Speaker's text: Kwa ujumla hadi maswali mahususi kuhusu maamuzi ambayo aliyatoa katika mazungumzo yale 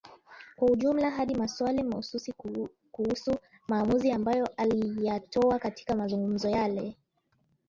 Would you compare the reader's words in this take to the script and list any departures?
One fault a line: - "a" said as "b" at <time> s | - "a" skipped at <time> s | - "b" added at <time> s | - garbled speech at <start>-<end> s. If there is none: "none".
none